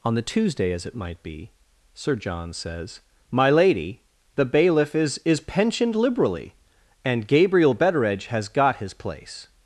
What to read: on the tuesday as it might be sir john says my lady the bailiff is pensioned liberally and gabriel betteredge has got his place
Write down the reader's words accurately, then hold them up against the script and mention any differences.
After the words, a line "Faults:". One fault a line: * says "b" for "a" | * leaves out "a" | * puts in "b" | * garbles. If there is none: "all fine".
on the tuesday as it might be sir john says my lady the bailiff is is pensioned liberally and gabriel betteredge has got his place
Faults:
* puts in "is"